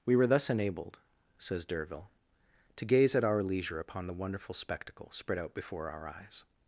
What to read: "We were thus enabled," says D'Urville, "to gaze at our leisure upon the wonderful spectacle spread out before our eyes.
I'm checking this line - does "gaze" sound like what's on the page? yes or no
yes